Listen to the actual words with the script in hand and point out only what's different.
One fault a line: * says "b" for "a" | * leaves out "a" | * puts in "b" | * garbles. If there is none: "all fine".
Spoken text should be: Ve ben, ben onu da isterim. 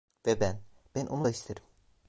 all fine